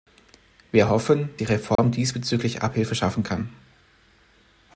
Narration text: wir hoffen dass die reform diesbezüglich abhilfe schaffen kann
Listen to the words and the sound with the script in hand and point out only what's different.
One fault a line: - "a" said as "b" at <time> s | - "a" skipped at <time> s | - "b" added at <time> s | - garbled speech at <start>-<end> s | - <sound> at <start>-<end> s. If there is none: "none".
- "dass" skipped at 1.3 s
- dropout at 1.8-1.8 s